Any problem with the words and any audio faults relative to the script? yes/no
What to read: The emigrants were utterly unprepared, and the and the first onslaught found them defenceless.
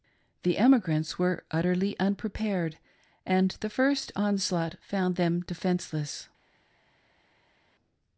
yes